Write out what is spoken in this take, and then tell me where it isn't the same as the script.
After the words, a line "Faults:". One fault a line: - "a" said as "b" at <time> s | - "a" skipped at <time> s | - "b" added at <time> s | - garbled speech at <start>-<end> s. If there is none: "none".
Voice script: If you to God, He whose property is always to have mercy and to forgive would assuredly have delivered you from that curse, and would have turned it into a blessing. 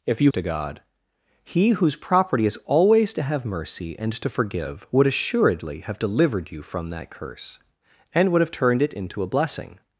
If you to God, He whose property is always to have mercy and to forgive would assuredly have delivered you from that curse, and would have turned it into a blessing.
Faults:
none